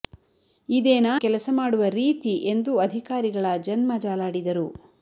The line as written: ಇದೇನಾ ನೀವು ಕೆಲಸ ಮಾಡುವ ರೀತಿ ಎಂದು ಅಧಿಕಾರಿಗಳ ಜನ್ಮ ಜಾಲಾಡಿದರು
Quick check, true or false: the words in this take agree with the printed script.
false